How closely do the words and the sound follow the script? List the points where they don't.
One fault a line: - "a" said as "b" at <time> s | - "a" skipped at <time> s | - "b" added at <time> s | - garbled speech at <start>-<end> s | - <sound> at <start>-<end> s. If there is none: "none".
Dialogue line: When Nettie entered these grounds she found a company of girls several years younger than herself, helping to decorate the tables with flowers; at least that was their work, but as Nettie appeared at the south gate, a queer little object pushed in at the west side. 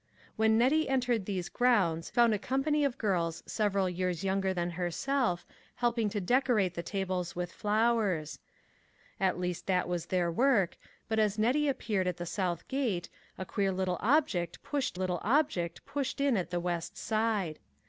- "she" skipped at 2.1 s
- "little object pushed" added at 14.9 s